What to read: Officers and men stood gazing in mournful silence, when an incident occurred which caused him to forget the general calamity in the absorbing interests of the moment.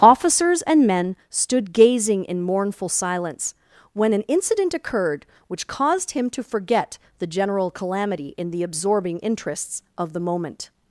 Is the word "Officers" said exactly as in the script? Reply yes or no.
yes